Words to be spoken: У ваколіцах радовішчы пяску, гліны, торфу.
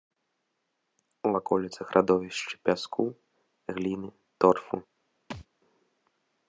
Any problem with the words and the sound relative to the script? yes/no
yes